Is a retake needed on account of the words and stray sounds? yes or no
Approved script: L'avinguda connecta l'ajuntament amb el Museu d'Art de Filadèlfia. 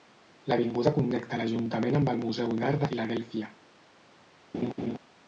yes